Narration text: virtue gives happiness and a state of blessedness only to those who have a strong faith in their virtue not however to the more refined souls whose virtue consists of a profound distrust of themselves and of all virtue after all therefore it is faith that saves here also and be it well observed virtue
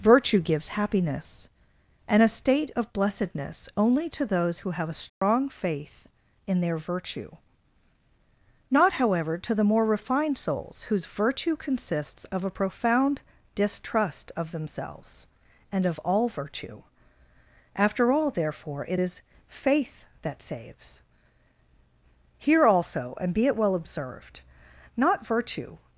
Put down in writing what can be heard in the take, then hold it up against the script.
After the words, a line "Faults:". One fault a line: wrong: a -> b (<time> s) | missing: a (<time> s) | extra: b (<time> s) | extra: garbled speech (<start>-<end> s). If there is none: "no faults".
virtue gives happiness and a state of blessedness only to those who have a strong faith in their virtue not however to the more refined souls whose virtue consists of a profound distrust of themselves and of all virtue after all therefore it is faith that saves here also and be it well observed not virtue
Faults:
extra: not (24.9 s)